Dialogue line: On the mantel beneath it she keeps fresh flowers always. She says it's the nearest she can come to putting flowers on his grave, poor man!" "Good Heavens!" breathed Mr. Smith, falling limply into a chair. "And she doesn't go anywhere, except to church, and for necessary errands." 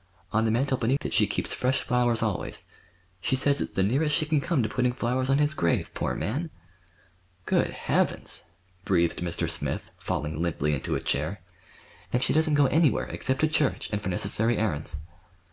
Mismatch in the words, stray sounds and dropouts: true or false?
true